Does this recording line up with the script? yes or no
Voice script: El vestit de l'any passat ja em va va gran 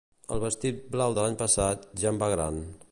no